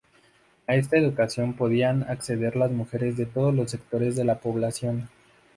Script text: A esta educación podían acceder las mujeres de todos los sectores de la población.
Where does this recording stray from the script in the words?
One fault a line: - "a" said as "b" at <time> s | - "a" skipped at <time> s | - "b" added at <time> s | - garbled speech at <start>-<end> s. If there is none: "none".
none